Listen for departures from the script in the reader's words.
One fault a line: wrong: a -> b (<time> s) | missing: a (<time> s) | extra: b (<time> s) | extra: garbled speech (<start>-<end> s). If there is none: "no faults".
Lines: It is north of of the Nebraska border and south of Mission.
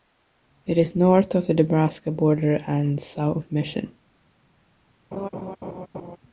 missing: of (1.5 s)